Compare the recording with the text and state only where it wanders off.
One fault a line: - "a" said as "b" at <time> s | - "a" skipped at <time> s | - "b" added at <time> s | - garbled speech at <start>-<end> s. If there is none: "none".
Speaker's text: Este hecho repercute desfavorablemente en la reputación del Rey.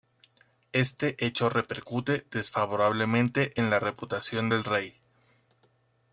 none